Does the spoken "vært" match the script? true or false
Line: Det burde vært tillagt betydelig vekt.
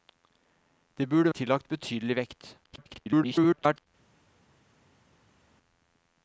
false